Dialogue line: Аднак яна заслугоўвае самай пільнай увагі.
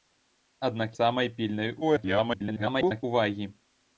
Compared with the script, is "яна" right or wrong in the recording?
wrong